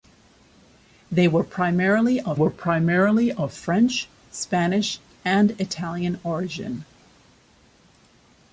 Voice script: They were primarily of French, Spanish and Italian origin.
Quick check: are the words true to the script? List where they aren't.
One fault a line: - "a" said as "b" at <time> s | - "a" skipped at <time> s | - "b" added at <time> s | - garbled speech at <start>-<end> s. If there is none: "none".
- "were primarily of" added at 2.3 s